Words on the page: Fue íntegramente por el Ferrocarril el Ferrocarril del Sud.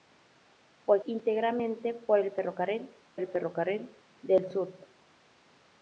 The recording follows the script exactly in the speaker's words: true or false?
true